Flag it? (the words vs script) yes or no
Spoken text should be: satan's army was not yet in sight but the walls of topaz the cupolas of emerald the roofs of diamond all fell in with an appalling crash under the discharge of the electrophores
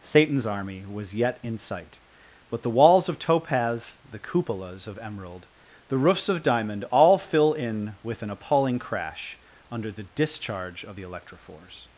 yes